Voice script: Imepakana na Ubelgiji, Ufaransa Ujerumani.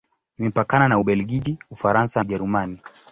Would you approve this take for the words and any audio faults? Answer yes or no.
yes